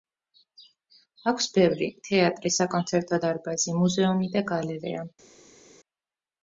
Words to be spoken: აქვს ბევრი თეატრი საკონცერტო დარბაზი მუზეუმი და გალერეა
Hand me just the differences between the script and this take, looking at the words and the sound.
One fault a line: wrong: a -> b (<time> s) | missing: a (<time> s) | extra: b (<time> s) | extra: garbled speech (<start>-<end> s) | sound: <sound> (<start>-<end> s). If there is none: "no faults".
no faults